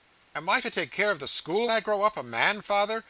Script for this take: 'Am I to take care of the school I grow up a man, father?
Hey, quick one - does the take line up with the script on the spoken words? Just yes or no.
yes